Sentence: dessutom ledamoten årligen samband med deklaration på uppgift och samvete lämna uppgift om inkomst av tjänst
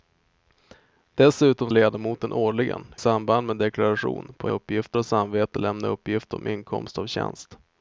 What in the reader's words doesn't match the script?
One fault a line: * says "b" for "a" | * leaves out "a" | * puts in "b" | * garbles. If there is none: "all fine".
all fine